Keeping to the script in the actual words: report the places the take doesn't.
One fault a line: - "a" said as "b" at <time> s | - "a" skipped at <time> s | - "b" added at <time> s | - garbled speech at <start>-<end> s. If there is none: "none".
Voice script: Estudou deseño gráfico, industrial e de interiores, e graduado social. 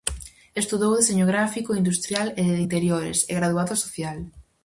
none